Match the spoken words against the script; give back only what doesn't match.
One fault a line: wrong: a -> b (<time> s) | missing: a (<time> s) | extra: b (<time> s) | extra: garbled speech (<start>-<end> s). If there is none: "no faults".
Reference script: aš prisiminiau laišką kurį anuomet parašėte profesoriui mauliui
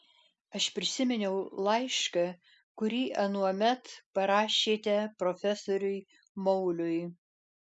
no faults